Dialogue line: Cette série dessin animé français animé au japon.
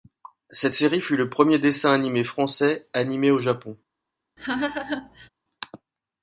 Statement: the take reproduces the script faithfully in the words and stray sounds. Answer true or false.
false